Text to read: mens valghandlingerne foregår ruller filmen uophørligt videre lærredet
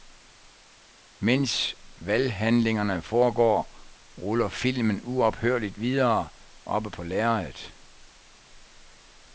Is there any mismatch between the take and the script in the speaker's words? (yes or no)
yes